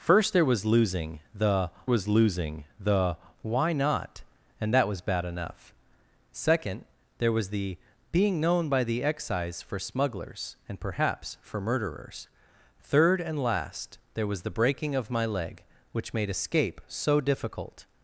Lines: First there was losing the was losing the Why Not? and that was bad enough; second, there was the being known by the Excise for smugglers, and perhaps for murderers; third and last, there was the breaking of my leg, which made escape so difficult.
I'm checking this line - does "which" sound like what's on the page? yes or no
yes